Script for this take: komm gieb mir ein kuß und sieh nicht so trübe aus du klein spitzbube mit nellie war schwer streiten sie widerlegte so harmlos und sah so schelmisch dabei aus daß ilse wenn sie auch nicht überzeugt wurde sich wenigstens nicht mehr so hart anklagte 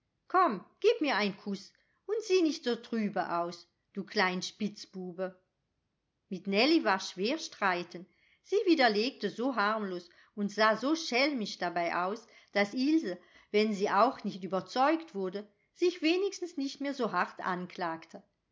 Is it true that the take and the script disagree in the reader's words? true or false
false